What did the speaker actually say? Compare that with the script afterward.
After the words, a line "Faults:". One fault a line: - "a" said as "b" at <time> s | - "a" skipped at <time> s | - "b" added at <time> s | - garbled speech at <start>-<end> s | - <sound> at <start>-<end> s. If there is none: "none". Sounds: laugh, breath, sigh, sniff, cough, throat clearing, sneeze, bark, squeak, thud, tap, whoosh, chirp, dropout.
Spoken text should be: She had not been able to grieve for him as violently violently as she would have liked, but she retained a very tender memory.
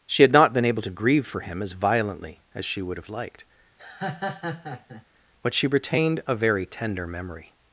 She had not been able to grieve for him as violently as she would have liked, but she retained a very tender memory.
Faults:
- "violently" skipped at 2.4 s
- laugh at 3.8-5.1 s